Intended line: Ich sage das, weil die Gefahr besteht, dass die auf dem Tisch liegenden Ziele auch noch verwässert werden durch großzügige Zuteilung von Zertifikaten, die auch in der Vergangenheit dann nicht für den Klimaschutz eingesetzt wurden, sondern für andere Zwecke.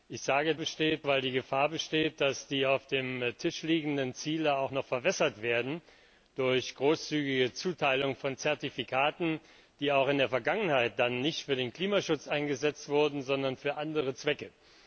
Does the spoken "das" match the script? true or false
false